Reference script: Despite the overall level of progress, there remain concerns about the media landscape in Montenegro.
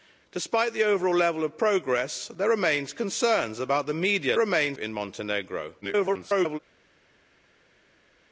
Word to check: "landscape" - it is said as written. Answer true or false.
false